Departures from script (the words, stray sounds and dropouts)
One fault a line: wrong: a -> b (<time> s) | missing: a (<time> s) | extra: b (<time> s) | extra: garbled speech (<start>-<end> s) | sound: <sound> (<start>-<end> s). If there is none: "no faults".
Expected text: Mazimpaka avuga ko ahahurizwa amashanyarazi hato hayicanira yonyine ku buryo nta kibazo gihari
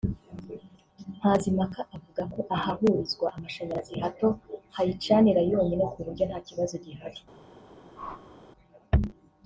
sound: whoosh (8.0-8.4 s)